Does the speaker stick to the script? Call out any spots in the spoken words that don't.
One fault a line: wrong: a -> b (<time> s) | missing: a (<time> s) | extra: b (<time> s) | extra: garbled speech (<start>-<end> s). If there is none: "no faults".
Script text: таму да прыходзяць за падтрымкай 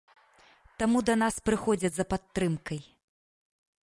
extra: нас (1.2 s)